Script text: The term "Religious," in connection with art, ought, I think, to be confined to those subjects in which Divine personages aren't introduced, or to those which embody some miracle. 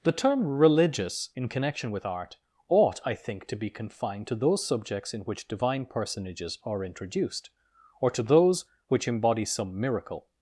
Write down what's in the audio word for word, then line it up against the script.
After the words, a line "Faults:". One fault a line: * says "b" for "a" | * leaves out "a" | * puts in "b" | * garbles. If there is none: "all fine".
The term "Religious," in connection with art, ought, I think, to be confined to those subjects in which Divine personages are introduced, or to those which embody some miracle.
Faults:
* says "are" for "aren't"